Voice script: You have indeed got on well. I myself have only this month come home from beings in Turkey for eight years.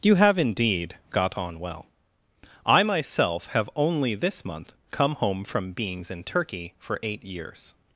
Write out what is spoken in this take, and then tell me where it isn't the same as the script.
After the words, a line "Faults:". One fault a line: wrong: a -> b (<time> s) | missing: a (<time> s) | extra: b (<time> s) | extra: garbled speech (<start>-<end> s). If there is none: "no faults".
You have indeed got on well. I myself have only this month come home from beings in Turkey for eight years.
Faults:
no faults